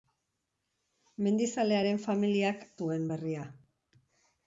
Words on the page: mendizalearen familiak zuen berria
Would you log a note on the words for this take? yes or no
no